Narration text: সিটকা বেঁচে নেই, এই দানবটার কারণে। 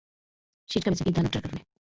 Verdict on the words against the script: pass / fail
fail